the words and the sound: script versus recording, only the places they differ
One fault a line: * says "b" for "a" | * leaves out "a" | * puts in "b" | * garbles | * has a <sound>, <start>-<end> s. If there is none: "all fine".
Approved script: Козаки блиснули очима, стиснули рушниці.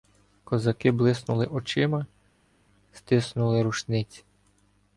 all fine